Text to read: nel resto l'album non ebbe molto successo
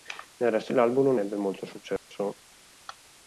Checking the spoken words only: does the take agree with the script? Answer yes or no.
yes